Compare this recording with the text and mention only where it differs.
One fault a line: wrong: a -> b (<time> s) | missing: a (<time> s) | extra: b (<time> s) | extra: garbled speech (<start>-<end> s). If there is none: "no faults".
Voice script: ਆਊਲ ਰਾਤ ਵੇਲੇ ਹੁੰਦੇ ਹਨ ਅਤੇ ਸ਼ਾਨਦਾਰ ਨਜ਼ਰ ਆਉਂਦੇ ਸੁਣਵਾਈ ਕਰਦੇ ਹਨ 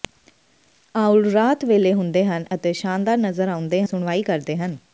no faults